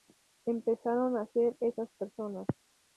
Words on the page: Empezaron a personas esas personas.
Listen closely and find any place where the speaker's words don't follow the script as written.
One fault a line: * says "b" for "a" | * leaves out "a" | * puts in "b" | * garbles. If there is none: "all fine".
* says "ser" for "personas"